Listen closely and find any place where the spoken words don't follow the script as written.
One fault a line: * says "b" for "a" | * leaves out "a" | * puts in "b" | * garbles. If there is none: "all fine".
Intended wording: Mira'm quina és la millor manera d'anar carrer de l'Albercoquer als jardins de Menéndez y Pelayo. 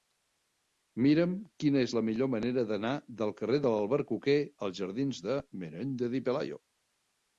* puts in "del"